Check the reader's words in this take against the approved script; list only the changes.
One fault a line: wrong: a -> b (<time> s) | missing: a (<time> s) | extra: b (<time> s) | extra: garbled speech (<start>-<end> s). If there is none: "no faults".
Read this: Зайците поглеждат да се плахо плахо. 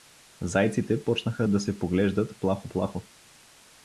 wrong: поглеждат -> почнаха (1.0 s)
extra: поглеждат (1.8 s)